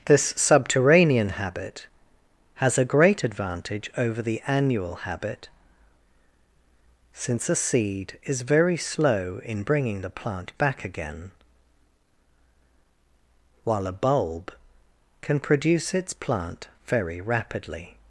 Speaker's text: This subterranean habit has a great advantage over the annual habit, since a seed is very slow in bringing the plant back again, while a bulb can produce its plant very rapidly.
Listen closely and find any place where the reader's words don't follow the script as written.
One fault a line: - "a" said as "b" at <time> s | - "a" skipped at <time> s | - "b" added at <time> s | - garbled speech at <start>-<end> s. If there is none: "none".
none